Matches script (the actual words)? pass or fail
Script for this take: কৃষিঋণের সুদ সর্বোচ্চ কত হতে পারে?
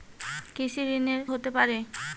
fail